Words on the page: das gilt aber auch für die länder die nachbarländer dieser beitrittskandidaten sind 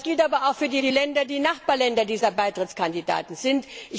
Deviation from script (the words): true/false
true